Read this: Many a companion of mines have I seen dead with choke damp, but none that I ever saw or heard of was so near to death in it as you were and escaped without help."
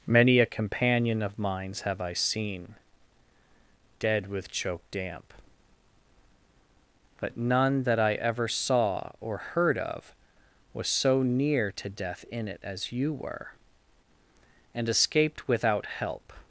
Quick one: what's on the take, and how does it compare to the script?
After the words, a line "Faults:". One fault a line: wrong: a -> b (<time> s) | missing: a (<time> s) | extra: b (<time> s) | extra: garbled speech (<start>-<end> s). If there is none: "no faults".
Many a companion of mines have I seen dead with choke damp, but none that I ever saw or heard of was so near to death in it as you were and escaped without help."
Faults:
no faults